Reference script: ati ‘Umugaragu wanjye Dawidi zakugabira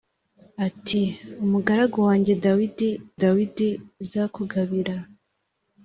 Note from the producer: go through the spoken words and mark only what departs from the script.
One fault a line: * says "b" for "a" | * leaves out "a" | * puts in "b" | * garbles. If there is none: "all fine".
* puts in "Dawidi"